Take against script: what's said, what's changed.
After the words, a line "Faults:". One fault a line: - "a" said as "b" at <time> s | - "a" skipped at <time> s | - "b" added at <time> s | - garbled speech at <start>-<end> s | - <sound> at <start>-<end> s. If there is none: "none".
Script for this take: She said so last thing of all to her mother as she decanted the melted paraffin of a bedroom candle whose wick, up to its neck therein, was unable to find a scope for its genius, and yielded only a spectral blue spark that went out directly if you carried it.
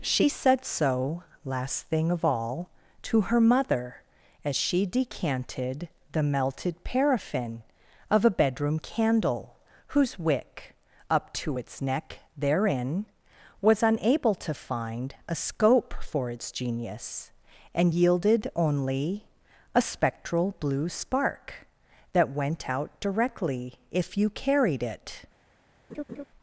She said so last thing of all to her mother as she decanted the melted paraffin of a bedroom candle whose wick, up to its neck therein, was unable to find a scope for its genius, and yielded only a spectral blue spark that went out directly if you carried it.
Faults:
- laugh at 25.9-26.2 s